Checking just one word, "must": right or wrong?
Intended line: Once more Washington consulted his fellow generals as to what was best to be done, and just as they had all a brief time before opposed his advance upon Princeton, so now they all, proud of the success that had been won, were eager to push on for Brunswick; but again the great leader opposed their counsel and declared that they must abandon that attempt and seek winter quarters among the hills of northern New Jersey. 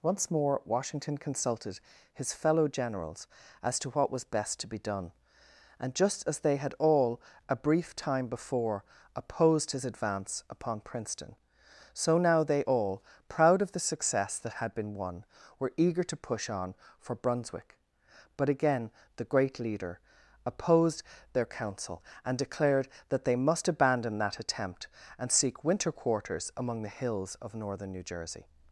right